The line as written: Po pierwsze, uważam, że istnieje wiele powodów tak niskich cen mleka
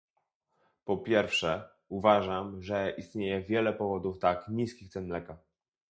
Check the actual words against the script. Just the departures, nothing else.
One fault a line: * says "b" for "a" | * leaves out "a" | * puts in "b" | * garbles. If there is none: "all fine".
all fine